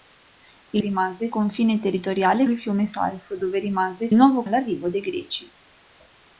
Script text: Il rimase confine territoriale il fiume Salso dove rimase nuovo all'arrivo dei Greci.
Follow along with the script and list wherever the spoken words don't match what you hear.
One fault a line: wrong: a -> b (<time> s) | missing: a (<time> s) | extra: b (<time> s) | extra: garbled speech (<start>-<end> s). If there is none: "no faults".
no faults